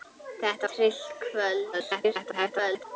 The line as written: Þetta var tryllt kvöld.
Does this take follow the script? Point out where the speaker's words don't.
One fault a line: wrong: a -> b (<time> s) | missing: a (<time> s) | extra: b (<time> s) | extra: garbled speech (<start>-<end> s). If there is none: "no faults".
missing: var (0.7 s)
extra: garbled speech (1.7-2.9 s)